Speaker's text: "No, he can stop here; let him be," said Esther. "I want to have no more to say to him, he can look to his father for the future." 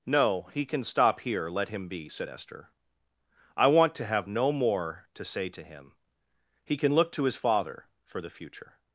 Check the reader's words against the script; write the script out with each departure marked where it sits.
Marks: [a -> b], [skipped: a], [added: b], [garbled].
"No, he can stop here; let him be," said Esther. "I want to have no more to say to him, he can look to his father for the future."